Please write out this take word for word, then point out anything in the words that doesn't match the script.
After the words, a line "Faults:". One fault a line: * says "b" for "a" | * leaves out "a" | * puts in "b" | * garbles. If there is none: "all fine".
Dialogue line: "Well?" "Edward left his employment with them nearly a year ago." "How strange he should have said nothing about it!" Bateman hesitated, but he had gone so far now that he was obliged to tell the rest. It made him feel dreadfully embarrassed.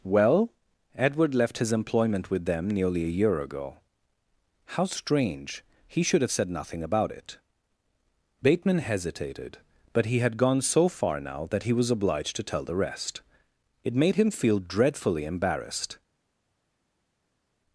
"Well?" "Edward left his employment with them nearly a year ago." "How strange he should have said nothing about it!" Bateman hesitated, but he had gone so far now that he was obliged to tell the rest. It made him feel dreadfully embarrassed.
Faults:
all fine